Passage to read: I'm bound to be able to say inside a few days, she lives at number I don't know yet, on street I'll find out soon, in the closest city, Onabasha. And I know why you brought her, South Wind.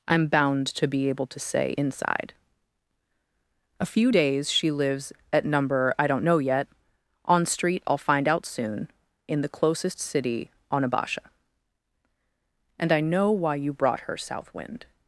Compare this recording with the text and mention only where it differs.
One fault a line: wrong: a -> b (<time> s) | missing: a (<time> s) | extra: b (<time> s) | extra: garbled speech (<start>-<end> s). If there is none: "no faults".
no faults